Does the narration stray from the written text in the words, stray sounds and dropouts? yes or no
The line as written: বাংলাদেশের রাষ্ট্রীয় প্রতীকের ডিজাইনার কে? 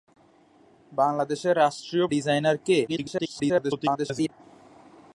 yes